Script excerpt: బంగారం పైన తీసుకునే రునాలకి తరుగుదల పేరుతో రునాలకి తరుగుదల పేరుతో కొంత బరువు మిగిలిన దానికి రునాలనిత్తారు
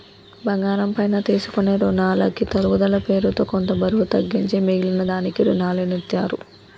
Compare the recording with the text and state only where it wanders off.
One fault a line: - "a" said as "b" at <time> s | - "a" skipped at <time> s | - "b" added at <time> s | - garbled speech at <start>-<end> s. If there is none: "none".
- "రునాలకి తరుగుదల పేరుతో" skipped at 3.4 s
- "తగ్గించి" added at 4.1 s